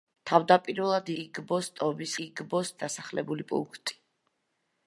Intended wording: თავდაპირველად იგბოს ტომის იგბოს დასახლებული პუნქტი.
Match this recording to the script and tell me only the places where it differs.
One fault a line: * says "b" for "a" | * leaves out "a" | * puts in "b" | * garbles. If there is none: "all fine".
all fine